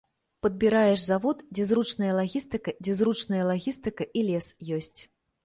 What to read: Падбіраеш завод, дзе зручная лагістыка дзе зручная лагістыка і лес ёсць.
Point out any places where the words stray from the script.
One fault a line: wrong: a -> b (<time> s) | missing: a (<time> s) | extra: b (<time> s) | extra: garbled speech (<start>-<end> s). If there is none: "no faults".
no faults